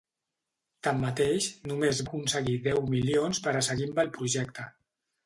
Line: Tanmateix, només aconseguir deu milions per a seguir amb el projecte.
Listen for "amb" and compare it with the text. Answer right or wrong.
right